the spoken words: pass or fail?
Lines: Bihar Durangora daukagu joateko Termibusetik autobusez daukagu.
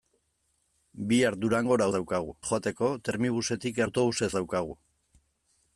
pass